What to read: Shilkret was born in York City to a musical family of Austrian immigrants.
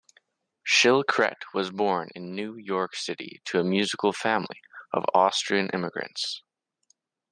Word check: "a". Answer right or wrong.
right